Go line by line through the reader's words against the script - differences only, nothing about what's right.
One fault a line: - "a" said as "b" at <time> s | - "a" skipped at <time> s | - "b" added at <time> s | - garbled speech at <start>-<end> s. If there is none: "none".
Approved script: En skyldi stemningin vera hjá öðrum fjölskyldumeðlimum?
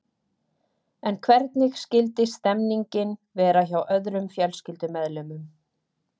- "hvernig" added at 1.3 s